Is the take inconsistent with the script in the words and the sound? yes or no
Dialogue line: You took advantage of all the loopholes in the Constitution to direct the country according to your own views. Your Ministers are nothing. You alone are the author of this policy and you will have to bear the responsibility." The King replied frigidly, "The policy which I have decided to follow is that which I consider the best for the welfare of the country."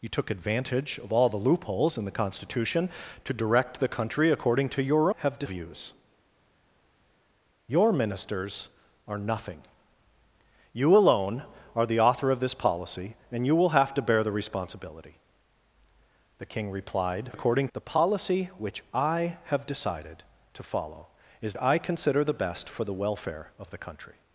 yes